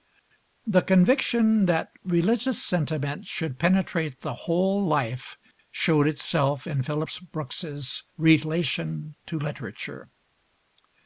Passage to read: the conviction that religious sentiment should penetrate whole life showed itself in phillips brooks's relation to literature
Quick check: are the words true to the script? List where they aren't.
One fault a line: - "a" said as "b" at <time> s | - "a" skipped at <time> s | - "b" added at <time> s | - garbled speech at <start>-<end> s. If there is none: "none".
- "the" added at 4.2 s